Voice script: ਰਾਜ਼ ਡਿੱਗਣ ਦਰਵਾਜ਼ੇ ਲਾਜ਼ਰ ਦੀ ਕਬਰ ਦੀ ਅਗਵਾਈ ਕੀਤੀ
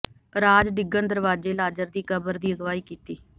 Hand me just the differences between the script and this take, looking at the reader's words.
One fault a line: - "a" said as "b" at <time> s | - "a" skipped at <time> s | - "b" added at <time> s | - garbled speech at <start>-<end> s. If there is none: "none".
none